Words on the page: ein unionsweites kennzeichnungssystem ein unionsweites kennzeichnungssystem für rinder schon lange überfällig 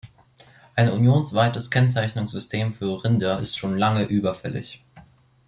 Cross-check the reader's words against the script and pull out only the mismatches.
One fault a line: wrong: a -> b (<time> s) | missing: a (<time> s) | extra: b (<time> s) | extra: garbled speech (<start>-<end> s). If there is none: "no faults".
missing: ein unionsweites kennzeichnungssystem (2.7 s)
extra: ist (3.4 s)